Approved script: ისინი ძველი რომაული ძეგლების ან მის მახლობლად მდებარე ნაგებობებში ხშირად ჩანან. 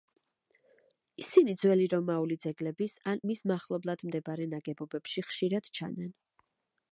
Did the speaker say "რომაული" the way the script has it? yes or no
yes